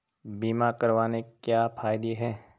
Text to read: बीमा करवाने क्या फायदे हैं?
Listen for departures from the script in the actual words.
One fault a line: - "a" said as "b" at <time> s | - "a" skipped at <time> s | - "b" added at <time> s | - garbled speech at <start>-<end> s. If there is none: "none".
none